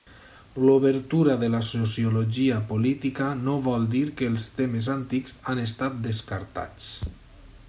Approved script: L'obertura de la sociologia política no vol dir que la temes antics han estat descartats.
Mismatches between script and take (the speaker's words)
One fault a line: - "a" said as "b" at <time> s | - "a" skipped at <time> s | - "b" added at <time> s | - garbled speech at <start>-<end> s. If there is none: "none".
- "la" said as "els" at 4.3 s